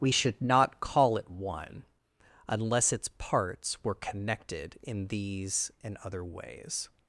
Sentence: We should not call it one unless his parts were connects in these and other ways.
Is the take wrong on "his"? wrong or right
wrong